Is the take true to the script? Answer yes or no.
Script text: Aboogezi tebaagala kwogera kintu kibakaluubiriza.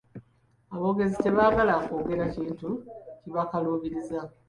yes